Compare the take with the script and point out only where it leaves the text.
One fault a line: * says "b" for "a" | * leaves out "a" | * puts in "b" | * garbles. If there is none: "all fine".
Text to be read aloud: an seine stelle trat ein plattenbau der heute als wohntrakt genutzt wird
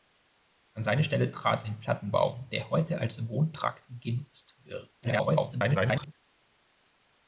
* garbles